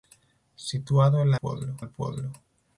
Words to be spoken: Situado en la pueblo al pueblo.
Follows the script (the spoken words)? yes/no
yes